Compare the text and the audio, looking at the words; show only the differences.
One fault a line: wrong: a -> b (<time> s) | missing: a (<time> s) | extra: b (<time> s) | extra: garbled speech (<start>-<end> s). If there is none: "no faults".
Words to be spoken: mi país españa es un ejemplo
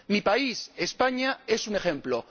no faults